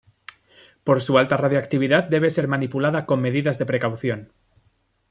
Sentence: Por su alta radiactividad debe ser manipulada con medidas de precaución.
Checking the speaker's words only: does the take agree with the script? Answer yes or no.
yes